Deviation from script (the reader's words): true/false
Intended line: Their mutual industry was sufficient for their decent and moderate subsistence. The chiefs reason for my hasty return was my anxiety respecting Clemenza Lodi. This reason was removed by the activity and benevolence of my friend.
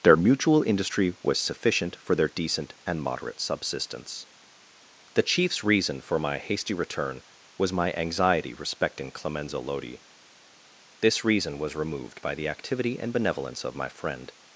false